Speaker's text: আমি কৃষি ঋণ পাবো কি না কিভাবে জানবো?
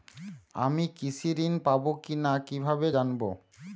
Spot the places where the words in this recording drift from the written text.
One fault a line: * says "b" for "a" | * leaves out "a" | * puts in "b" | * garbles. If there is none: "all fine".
all fine